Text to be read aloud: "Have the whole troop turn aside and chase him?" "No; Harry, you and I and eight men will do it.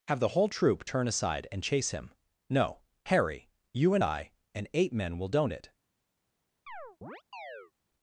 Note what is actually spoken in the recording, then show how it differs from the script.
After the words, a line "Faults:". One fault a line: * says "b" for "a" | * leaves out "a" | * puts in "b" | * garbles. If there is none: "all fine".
"Have the whole troop turn aside and chase him?" "No; Harry, you and I and eight men will don't it.
Faults:
* says "don't" for "do"